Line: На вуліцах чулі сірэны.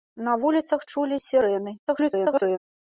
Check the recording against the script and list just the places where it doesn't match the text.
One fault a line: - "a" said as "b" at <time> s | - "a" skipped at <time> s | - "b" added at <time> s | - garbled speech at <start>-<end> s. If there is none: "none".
- garbled speech at 1.9-2.6 s